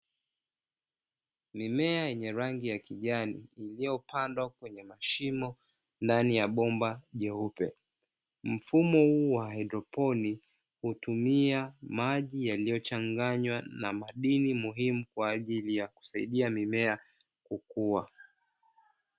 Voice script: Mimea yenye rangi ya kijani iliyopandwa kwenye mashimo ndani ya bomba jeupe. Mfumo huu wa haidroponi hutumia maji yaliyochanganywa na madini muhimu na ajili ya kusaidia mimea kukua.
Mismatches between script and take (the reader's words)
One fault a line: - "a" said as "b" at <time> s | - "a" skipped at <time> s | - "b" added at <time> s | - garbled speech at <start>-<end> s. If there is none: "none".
- "na" said as "kwa" at 15.1 s